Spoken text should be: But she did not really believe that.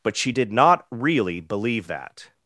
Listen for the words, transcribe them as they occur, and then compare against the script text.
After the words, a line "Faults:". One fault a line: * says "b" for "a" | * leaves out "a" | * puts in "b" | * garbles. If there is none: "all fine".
But she did not really believe that.
Faults:
all fine